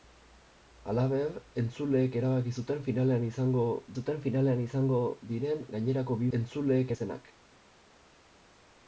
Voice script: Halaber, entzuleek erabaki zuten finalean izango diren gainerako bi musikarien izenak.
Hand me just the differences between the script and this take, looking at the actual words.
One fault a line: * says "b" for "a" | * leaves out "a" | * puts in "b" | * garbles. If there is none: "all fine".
* puts in "zuten finalean izango"
* says "entzuleek" for "musikarien"